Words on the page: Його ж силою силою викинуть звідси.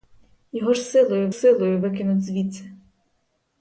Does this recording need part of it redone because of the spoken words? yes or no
no